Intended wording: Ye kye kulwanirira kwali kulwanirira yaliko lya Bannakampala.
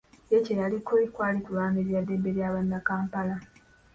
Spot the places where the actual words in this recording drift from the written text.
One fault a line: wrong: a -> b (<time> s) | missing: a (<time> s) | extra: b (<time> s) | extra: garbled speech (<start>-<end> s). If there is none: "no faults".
wrong: kulwanirira -> yaliko (0.6 s)
wrong: yaliko -> ddembe (2.0 s)